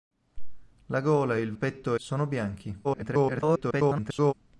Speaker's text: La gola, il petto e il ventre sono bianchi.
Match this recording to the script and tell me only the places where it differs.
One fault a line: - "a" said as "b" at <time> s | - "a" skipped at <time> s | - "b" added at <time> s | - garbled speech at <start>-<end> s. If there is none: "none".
- "il petto" skipped at 1.4 s
- "ventre" said as "petto" at 1.5 s
- garbled speech at 2.8-4.3 s